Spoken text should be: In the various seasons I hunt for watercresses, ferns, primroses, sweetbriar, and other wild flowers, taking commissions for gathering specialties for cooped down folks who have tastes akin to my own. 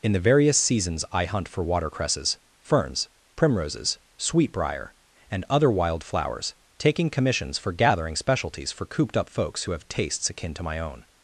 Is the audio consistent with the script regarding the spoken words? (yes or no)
no